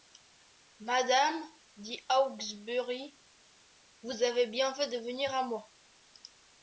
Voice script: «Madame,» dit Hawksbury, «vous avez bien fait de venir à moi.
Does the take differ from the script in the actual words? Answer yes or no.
no